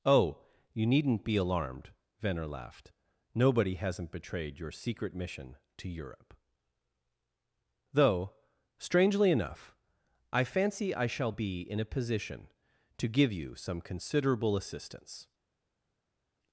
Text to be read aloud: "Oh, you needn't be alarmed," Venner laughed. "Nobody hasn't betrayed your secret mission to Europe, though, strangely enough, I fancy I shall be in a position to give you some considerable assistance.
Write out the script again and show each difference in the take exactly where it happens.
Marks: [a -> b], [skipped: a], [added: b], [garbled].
"Oh, you needn't be alarmed," Venner laughed. "Nobody hasn't betrayed your secret mission to Europe, though, strangely enough, I fancy I shall be in a position to give you some considerable assistance.